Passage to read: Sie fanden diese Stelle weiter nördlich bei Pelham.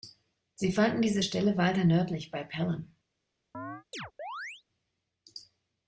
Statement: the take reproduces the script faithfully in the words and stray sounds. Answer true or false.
false